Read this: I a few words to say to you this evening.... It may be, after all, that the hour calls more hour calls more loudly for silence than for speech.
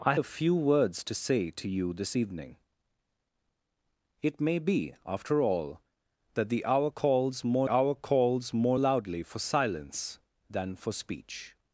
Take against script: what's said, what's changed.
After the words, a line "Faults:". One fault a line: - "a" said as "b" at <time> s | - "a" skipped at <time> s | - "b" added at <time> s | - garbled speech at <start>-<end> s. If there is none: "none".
I a few words to say to you this evening.... It may be, after all, that the hour calls more hour calls more loudly for silence than for speech.
Faults:
none